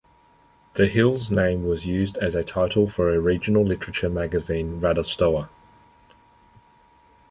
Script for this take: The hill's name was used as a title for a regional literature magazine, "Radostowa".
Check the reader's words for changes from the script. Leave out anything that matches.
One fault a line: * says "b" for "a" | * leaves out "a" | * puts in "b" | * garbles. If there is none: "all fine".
all fine